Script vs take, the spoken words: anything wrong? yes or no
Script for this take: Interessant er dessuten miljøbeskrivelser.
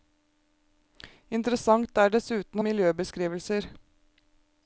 no